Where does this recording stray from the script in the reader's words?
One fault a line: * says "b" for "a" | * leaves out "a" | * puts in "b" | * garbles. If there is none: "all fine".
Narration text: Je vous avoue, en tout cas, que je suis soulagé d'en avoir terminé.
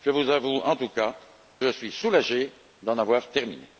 * leaves out "que"